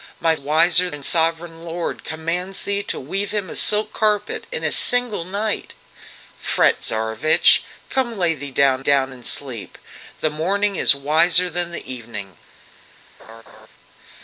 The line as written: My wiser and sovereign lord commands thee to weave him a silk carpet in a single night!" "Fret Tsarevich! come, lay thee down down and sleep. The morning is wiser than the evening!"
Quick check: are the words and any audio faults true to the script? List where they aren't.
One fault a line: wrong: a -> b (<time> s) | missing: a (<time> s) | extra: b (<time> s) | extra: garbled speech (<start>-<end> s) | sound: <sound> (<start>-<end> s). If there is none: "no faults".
sound: laugh (13.2-13.7 s)